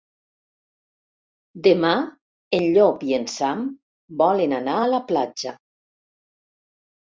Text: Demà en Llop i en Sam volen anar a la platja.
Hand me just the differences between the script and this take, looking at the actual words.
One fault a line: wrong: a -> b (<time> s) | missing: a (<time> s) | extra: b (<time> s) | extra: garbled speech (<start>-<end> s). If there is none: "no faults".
no faults